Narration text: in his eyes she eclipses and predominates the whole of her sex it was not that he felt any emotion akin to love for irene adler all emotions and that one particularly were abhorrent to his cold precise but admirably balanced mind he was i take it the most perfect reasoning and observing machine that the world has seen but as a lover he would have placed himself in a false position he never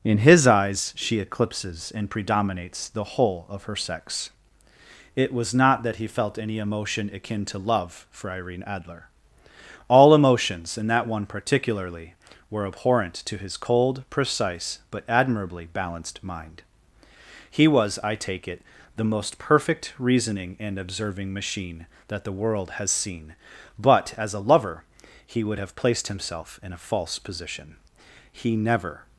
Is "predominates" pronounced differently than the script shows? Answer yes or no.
no